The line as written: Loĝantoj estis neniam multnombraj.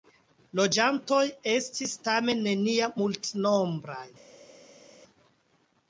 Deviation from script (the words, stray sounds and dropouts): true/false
true